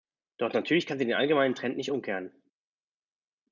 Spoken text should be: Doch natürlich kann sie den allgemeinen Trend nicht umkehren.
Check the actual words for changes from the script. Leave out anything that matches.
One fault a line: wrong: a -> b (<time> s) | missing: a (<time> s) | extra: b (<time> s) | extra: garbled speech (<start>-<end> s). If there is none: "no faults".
no faults